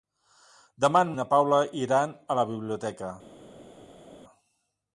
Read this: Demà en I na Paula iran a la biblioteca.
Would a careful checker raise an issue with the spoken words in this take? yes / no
no